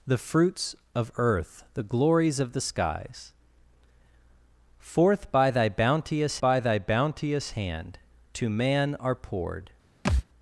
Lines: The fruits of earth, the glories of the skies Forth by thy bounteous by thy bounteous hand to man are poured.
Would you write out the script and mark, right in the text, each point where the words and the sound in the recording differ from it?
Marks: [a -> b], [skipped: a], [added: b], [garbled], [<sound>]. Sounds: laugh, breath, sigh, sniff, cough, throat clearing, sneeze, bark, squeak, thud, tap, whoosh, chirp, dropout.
The fruits of earth, the glories of the skies Forth by thy bounteous by thy bounteous hand to man are poured. [thud]